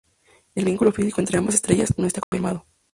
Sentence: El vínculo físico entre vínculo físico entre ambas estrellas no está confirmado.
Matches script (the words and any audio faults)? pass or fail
fail